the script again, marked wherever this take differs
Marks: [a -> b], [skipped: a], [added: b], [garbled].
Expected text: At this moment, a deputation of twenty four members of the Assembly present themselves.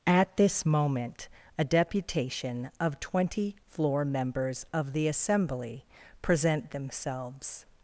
At this moment, a deputation of twenty [four -> floor] members of the Assembly present themselves.